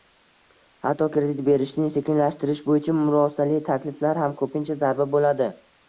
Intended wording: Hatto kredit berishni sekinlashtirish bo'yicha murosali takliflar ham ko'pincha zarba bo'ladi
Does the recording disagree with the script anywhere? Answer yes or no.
no